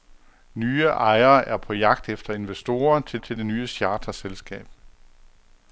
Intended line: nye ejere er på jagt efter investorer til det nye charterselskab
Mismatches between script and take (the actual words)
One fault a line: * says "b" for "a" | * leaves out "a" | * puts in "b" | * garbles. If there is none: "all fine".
* puts in "til"